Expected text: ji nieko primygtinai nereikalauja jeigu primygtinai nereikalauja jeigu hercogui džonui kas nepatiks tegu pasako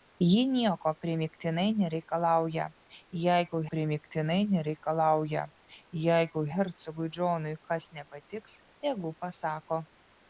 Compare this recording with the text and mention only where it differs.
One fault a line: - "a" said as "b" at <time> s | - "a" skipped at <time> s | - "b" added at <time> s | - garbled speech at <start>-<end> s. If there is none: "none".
none